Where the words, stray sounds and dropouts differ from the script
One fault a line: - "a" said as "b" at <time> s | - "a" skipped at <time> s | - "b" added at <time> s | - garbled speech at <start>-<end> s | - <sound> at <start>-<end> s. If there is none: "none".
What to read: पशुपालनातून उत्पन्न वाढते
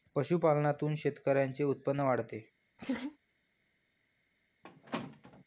- "शेतकऱ्यांचे" added at 0.9 s
- laugh at 2.8-3.2 s
- squeak at 4.6-5.4 s